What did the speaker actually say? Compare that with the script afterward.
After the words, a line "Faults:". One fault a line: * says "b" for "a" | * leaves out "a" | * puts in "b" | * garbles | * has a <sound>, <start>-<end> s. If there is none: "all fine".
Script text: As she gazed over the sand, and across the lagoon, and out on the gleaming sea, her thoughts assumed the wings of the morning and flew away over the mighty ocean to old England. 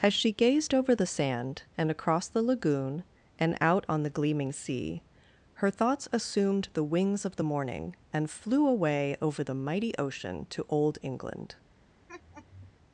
As she gazed over the sand, and across the lagoon, and out on the gleaming sea, her thoughts assumed the wings of the morning and flew away over the mighty ocean to old England.
Faults:
* has a laugh, 12.1-12.8 s